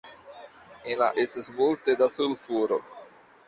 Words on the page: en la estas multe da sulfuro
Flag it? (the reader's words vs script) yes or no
no